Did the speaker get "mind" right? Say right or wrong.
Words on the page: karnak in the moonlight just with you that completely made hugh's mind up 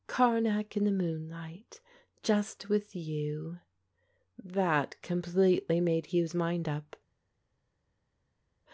right